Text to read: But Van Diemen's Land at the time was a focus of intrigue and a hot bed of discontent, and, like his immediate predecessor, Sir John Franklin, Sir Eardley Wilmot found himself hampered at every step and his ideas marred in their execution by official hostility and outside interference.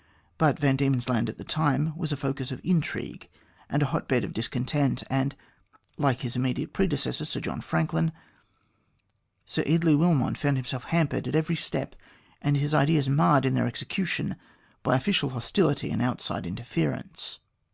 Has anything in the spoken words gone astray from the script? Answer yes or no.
no